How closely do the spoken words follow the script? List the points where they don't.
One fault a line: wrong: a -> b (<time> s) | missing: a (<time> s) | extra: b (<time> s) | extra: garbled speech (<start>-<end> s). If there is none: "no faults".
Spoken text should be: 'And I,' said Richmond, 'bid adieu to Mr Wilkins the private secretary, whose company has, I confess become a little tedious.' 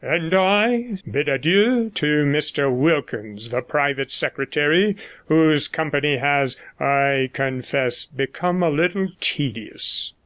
missing: said Richmond (0.9 s)